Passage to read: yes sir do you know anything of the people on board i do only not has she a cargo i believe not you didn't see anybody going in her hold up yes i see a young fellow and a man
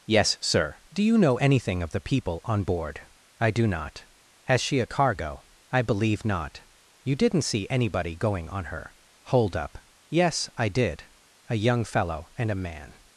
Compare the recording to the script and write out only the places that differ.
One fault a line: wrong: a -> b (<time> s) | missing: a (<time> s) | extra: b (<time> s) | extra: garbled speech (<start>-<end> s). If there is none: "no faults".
missing: only (3.7 s)
wrong: in -> on (8.5 s)
wrong: see -> did (10.7 s)